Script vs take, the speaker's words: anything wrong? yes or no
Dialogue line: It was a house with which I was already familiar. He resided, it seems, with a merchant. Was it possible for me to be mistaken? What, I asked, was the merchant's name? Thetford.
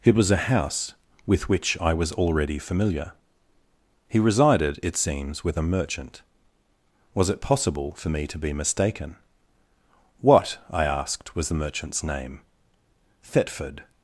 no